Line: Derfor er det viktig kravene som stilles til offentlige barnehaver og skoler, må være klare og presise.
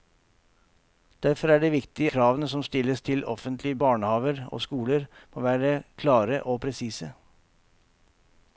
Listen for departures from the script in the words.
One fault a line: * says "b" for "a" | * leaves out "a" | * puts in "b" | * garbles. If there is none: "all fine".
all fine